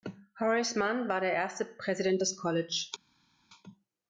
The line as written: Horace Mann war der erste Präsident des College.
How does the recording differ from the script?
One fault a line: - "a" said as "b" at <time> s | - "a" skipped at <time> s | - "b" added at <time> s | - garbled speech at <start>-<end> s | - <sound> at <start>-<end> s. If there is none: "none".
none